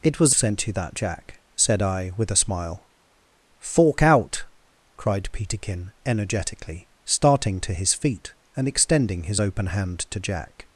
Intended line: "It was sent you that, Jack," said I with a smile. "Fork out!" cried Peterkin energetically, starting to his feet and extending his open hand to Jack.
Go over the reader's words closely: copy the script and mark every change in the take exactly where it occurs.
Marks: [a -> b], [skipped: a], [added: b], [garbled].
"It was sent you that, Jack," said I with a smile. "Fork out!" cried Peterkin energetically, starting to his feet and extending his open hand to Jack.